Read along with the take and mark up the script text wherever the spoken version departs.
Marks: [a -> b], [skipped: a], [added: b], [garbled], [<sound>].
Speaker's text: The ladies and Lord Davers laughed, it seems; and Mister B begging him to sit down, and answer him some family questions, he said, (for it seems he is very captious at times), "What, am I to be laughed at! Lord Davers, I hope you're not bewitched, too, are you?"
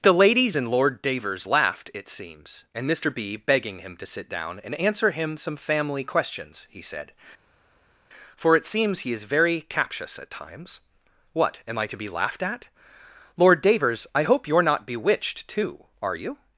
The ladies and Lord Davers laughed, it seems; and Mister B begging him to sit down, and answer him some family questions, he said, (for it seems he is very captious at times), "What, am I to be laughed at! Lord Davers, I hope you're not bewitched, too, are you?"